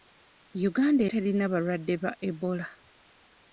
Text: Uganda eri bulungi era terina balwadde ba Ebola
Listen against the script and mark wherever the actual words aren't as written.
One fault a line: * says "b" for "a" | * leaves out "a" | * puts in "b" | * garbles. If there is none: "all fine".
* leaves out "eri bulungi era"